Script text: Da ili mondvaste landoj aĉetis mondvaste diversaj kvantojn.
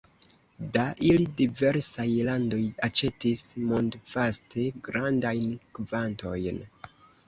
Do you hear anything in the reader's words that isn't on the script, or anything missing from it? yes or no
yes